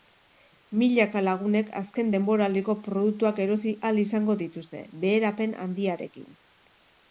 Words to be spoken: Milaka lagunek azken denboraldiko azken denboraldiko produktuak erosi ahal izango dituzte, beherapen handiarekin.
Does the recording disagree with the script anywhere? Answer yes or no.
yes